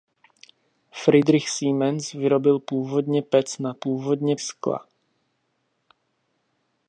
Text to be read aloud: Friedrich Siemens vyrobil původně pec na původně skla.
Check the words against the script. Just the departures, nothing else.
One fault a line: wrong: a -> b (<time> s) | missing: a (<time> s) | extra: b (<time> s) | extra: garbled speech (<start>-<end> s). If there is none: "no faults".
no faults